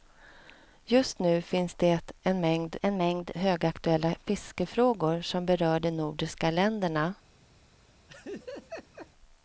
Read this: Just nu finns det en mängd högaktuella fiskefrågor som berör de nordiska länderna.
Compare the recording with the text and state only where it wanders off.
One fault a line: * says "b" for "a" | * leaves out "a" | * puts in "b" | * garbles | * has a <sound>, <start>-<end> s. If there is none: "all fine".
* puts in "en mängd"
* has a laugh, 8.1-9.1 s